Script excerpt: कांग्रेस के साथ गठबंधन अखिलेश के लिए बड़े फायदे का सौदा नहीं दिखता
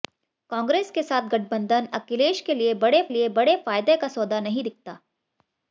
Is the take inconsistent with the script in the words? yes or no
yes